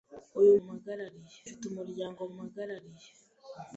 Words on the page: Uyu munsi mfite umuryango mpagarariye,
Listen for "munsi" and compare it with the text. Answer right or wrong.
wrong